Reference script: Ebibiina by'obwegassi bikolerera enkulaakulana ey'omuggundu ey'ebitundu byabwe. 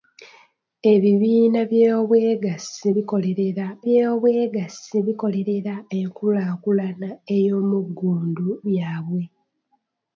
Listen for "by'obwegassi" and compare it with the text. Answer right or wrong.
right